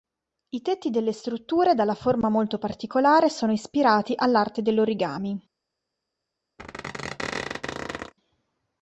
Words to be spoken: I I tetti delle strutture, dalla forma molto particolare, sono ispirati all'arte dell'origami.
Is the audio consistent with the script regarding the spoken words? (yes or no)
no